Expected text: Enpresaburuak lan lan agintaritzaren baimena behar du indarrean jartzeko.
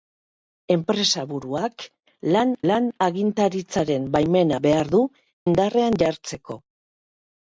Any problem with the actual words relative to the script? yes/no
no